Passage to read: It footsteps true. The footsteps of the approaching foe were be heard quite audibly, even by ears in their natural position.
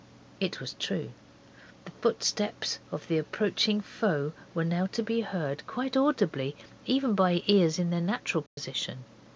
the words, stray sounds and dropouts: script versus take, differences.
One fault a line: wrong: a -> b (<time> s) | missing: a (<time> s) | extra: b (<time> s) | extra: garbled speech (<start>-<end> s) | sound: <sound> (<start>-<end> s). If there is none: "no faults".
wrong: footsteps -> was (0.6 s)
extra: now to (4.6 s)
sound: dropout (8.5-8.6 s)